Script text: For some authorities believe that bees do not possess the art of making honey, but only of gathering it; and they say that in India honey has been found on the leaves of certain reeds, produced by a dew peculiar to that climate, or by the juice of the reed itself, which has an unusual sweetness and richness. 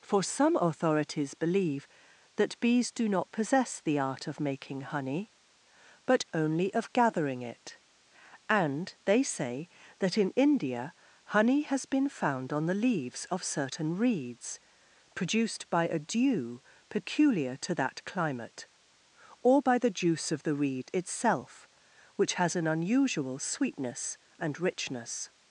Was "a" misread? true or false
false